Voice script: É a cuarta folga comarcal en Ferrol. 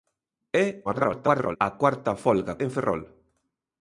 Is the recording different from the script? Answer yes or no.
yes